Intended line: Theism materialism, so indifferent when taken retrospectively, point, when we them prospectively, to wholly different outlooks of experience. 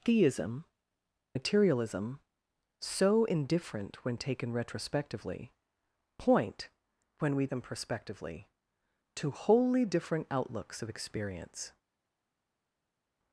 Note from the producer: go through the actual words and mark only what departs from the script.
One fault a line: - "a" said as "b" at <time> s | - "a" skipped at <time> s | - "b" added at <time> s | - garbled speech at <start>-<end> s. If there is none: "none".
none